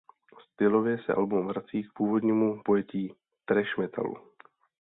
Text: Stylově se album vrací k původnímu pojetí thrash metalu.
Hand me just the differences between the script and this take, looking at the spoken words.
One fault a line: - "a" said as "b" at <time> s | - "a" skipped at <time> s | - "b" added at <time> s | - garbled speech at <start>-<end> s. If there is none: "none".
none